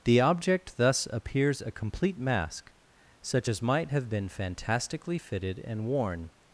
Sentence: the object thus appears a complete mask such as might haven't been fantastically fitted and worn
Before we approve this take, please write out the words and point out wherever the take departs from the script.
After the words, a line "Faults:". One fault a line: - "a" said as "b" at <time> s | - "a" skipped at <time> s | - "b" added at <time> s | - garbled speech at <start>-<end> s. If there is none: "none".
the object thus appears a complete mask such as might have been fantastically fitted and worn
Faults:
- "haven't" said as "have" at 3.9 s